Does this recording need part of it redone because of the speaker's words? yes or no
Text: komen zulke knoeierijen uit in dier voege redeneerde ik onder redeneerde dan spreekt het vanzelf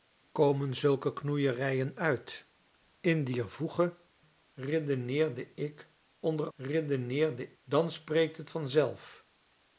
no